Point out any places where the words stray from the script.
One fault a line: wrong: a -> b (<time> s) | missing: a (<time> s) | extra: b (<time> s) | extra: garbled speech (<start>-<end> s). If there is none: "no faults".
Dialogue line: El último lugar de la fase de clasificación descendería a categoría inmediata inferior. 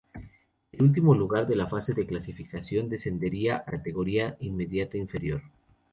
no faults